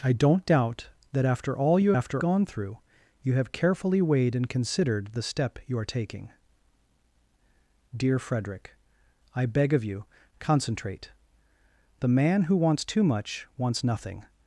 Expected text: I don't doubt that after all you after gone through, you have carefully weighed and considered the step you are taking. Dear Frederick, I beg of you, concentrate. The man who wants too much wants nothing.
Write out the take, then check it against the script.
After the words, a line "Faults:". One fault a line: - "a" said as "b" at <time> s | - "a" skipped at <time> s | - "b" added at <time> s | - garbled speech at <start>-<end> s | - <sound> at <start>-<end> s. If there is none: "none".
I don't doubt that after all you after gone through, you have carefully weighed and considered the step you are taking. Dear Frederick, I beg of you, concentrate. The man who wants too much wants nothing.
Faults:
none